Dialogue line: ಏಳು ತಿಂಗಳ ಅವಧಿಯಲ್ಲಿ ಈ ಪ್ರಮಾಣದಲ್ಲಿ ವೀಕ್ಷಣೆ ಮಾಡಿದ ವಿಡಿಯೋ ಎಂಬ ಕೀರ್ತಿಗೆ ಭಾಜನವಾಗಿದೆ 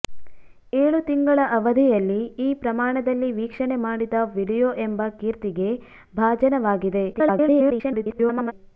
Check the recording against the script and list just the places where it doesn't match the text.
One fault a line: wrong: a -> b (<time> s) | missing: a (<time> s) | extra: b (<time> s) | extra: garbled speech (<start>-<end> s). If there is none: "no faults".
extra: garbled speech (7.1-8.5 s)